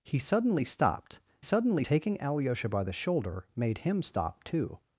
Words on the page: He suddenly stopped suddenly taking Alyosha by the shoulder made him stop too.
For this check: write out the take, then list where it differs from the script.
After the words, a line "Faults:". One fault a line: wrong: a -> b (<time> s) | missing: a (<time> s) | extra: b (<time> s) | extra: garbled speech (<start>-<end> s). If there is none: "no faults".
He suddenly stopped suddenly taking Alyosha by the shoulder made him stop too.
Faults:
no faults